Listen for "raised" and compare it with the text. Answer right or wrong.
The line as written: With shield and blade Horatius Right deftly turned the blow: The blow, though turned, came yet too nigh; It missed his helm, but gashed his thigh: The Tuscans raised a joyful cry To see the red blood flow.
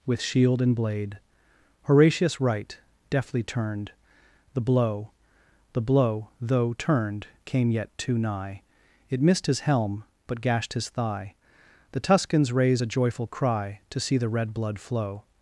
wrong